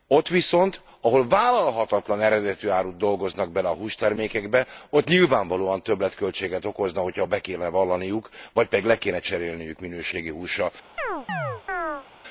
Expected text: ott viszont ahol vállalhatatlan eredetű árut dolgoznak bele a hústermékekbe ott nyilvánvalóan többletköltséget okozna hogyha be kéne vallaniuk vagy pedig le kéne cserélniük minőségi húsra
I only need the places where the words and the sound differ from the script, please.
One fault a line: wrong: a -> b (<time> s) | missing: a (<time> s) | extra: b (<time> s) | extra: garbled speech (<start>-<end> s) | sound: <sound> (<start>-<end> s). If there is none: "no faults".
sound: chirp (11.0-12.1 s)